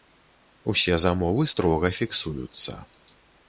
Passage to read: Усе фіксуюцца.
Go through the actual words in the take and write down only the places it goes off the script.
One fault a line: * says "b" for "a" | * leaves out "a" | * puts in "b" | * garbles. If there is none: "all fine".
* puts in "замовы строга"